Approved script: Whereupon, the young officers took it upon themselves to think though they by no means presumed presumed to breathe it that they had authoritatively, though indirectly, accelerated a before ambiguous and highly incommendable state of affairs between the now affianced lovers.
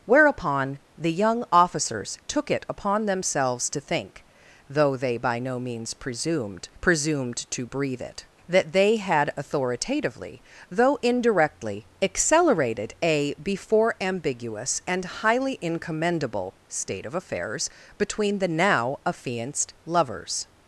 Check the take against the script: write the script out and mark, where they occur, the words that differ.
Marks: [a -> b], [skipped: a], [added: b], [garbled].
Whereupon, the young officers took it upon themselves to think though they by no means presumed presumed to breathe it that they had authoritatively, though indirectly, accelerated a before ambiguous and highly incommendable state of affairs between the now affianced lovers.